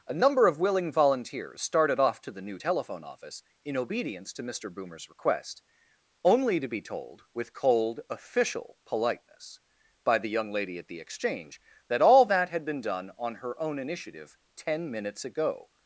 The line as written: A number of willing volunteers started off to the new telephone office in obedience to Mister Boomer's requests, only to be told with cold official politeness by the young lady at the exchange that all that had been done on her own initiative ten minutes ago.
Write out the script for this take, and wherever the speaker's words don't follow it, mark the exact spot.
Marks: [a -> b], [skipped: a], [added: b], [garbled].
A number of willing volunteers started off to the new telephone office in obedience to Mister Boomer's [requests, -> request] only to be told with cold official politeness by the young lady at the exchange that all that had been done on her own initiative ten minutes ago.